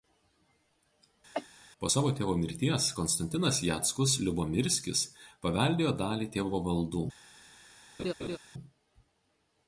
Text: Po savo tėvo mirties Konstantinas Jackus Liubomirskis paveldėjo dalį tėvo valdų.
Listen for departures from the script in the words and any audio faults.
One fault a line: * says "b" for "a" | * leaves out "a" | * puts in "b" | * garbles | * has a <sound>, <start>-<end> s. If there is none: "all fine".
* has a cough, 1.3-1.5 s
* has a laugh, 8.0-8.4 s